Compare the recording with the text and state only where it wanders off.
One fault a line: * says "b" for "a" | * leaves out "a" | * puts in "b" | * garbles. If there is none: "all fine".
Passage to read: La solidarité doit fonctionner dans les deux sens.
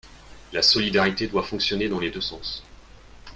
all fine